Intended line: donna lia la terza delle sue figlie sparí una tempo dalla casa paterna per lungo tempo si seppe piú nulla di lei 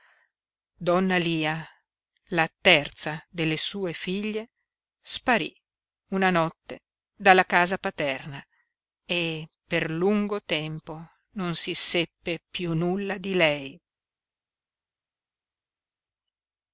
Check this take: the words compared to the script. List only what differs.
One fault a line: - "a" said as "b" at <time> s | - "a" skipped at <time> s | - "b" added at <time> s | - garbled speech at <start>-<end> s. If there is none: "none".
- "tempo" said as "notte" at 6.3 s
- "e" added at 9.0 s
- "non" added at 11.3 s